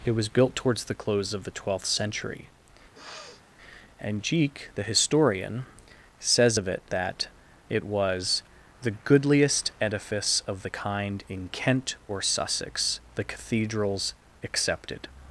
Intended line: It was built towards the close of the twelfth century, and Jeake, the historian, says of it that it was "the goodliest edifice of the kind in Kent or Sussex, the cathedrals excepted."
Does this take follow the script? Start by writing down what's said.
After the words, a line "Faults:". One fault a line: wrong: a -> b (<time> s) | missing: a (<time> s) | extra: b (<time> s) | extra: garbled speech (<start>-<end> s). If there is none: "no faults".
It was built towards the close of the twelfth century, and Jeake, the historian, says of it that it was "the goodliest edifice of the kind in Kent or Sussex, the cathedrals excepted."
Faults:
no faults